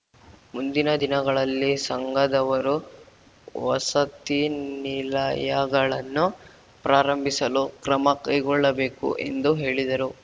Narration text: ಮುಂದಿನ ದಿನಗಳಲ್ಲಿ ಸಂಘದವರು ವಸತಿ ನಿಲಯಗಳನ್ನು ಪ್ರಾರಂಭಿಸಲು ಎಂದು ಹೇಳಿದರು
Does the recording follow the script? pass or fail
fail